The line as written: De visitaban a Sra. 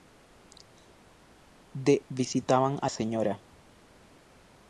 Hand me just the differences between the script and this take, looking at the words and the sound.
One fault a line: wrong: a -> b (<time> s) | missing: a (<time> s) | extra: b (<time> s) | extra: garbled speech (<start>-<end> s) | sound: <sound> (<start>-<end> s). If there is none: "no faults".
no faults